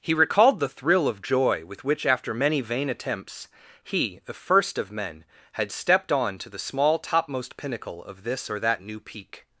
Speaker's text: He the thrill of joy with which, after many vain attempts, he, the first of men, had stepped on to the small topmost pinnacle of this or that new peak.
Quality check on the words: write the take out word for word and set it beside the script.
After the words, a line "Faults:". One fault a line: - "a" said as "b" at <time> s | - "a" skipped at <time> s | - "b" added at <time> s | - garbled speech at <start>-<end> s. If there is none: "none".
He recalled the thrill of joy with which, after many vain attempts, he, the first of men, had stepped on to the small topmost pinnacle of this or that new peak.
Faults:
- "recalled" added at 0.1 s